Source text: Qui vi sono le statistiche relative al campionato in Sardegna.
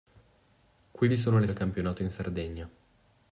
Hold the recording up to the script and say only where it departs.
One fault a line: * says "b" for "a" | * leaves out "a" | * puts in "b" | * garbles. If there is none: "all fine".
* leaves out "statistiche relative"